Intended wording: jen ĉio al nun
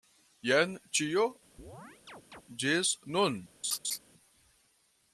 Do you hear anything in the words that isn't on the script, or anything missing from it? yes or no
yes